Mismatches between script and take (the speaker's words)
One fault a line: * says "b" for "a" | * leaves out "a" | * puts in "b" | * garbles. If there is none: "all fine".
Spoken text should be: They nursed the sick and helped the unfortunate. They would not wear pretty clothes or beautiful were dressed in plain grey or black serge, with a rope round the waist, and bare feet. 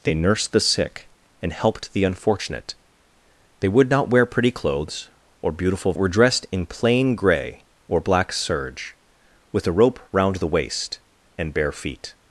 all fine